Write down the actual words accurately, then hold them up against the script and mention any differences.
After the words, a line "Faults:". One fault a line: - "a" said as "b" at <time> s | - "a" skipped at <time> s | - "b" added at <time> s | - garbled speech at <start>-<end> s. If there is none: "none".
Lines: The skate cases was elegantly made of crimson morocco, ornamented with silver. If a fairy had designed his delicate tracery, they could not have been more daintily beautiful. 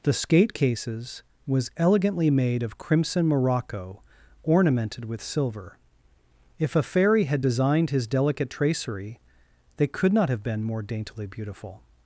The skate cases was elegantly made of crimson morocco, ornamented with silver. If a fairy had designed his delicate tracery, they could not have been more daintily beautiful.
Faults:
none